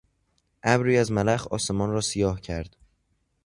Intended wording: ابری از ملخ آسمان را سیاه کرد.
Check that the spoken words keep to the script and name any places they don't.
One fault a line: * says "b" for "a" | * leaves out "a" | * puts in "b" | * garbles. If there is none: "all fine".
all fine